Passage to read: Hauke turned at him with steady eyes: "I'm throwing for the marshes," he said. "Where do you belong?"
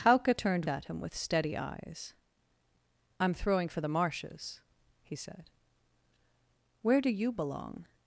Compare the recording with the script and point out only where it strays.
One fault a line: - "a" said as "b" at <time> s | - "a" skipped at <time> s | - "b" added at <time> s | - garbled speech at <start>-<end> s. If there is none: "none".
none